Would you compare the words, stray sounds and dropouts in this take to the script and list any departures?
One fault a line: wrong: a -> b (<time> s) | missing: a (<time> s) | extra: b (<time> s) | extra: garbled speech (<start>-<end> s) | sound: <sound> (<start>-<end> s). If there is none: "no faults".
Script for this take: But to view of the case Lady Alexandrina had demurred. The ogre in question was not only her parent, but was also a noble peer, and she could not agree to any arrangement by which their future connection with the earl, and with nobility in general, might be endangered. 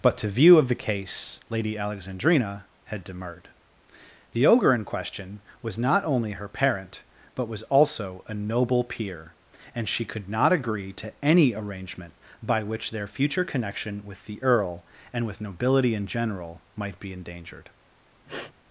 sound: sniff (18.3-18.5 s)